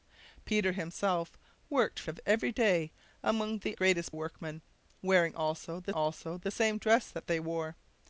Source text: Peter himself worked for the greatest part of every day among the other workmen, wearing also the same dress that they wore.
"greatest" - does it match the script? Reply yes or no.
no